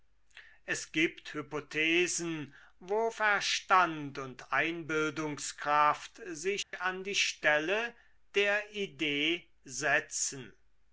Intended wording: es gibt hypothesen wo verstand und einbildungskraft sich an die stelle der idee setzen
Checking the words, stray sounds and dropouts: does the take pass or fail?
fail